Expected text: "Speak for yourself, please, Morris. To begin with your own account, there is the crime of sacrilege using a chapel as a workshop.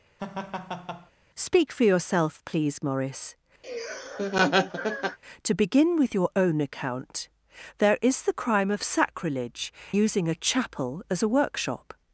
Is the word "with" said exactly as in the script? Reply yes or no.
yes